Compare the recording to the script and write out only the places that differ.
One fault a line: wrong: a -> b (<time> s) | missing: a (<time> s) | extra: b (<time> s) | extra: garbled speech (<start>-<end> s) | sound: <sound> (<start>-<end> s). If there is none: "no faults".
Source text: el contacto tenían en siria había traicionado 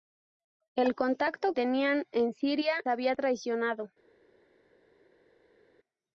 no faults